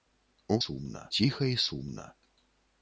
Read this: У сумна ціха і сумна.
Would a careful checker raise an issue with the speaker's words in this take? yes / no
no